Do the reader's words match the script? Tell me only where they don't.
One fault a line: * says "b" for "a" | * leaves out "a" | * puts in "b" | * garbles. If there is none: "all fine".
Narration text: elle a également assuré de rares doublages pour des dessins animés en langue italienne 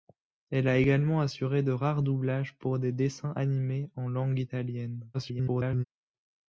* garbles